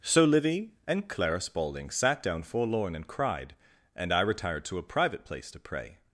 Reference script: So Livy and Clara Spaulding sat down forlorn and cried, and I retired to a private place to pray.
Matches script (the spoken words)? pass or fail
pass